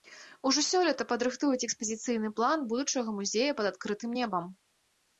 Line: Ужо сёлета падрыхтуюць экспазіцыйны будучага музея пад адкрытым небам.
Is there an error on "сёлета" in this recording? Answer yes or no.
no